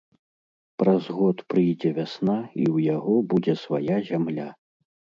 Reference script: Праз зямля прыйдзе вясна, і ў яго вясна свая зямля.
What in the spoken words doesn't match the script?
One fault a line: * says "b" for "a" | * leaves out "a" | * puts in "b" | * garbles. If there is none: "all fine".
* says "год" for "зямля"
* says "будзе" for "вясна"